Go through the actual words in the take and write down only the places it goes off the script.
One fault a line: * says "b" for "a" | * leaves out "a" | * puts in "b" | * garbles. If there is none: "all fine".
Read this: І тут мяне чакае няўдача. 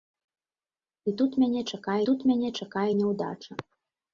* puts in "тут мяне чакае"